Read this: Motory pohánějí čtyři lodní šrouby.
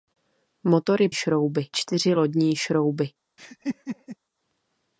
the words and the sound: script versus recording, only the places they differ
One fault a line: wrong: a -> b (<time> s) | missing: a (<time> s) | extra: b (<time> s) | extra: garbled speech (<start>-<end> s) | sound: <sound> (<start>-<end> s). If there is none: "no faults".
wrong: pohánějí -> šrouby (1.1 s)
sound: laugh (3.4-4.2 s)